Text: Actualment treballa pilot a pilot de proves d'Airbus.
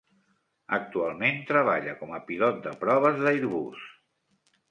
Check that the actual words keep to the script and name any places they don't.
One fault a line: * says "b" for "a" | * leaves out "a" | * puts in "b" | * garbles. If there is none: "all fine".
* says "com" for "pilot"